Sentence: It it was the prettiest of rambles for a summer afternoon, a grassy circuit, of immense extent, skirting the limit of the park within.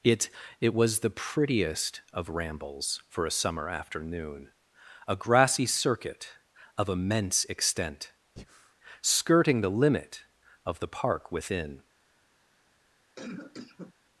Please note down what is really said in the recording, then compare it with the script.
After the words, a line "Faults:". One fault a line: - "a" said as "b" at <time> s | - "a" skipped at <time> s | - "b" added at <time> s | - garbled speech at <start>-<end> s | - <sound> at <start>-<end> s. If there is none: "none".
It it was the prettiest of rambles for a summer afternoon, a grassy circuit, of immense extent, skirting the limit of the park within.
Faults:
- breath at 8.4-8.7 s
- cough at 13.2-13.9 s